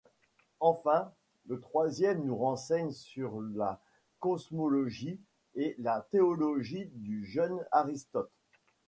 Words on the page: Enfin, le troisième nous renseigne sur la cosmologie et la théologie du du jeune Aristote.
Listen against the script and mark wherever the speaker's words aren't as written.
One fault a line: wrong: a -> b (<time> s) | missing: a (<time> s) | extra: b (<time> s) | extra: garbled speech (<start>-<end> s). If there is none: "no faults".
missing: du (7.3 s)